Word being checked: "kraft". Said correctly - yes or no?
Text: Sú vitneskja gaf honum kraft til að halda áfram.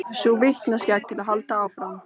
no